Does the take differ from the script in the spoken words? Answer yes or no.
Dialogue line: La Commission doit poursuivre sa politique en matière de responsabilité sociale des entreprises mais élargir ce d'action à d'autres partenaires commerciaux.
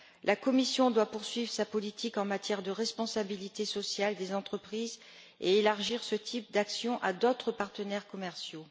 yes